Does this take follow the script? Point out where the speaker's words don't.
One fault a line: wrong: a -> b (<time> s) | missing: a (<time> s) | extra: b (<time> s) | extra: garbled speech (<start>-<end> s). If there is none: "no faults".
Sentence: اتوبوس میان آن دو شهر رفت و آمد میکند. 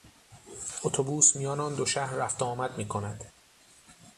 no faults